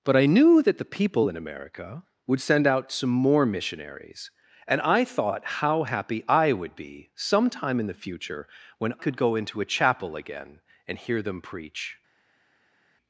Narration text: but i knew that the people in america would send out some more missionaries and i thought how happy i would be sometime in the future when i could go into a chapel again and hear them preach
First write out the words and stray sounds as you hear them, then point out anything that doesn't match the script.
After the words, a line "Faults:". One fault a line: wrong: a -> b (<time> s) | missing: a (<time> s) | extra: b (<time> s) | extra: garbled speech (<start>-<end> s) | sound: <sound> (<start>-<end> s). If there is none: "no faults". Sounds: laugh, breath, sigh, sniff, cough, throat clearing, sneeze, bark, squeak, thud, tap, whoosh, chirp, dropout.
but i knew that the people in america would send out some more missionaries and i thought how happy i would be sometime in the future when could go into a chapel again and hear them preach
Faults:
missing: i (8.9 s)